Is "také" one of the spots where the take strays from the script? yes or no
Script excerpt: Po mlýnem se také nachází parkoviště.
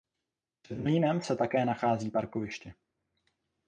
no